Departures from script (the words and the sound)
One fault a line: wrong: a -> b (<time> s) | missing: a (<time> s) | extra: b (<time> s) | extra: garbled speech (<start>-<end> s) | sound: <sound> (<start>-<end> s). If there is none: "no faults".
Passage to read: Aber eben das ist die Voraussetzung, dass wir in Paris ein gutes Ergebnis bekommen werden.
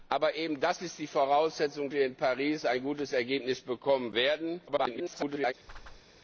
missing: dass (1.9 s)
extra: garbled speech (4.7-5.5 s)
sound: whoosh (5.7-6.0 s)